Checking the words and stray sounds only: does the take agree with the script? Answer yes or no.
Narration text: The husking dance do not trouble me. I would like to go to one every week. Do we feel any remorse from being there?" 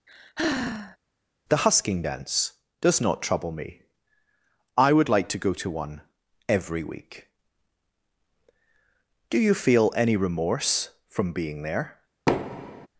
no